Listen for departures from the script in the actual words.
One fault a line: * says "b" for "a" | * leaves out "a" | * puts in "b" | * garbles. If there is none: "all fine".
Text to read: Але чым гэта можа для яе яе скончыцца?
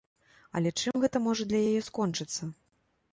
* leaves out "яе"